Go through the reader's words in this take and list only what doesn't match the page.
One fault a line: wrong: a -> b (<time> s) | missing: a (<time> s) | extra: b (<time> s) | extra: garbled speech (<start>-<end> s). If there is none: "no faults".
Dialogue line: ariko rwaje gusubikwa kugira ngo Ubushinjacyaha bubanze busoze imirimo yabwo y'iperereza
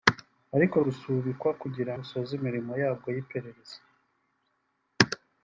missing: rwaje (0.8 s)
missing: ngo Ubushinjacyaha bubanze (1.9 s)